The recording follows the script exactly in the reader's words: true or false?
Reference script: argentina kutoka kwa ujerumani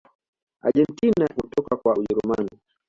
true